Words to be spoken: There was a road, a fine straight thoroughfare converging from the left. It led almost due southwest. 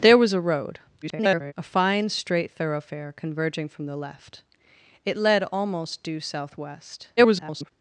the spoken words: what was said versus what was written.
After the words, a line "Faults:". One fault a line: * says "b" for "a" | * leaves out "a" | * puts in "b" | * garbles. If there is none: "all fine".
There was a road, [garbled] a fine straight thoroughfare converging from the left. It led almost due southwest. [garbled]
Faults:
* garbles
* garbles